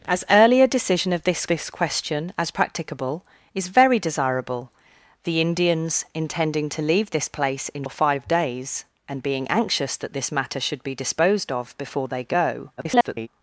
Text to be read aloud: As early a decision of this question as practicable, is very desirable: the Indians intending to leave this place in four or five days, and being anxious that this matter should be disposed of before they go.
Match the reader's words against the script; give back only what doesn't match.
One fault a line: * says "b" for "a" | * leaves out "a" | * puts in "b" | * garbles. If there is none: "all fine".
* puts in "this"
* leaves out "four"
* garbles